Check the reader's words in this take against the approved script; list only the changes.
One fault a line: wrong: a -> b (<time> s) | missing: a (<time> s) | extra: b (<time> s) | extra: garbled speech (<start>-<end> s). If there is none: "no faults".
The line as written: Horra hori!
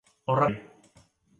no faults